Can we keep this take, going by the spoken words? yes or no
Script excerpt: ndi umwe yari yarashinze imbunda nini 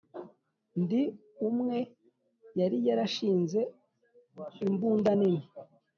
yes